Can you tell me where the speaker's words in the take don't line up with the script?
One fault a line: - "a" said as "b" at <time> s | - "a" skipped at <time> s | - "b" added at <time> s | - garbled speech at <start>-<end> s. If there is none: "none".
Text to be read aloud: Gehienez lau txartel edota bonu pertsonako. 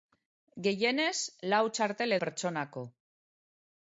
- "edota bonu" skipped at 2.1 s